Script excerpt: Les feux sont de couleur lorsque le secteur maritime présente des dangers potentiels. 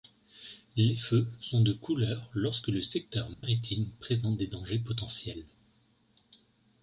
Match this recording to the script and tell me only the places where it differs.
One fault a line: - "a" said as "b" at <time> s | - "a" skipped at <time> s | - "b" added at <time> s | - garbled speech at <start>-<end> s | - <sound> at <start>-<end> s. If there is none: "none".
- dropout at 3.3-3.4 s